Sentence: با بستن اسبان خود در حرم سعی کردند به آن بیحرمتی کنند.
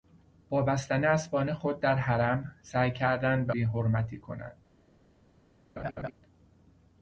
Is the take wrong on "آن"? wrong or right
wrong